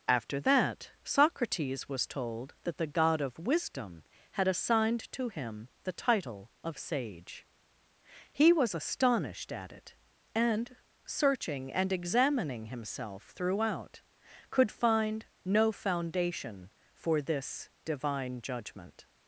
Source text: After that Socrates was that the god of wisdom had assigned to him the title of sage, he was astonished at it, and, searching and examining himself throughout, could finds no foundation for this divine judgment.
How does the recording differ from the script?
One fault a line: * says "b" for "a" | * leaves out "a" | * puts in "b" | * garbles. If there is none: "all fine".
* puts in "told"
* says "find" for "finds"